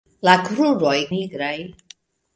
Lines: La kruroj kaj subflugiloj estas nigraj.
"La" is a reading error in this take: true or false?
false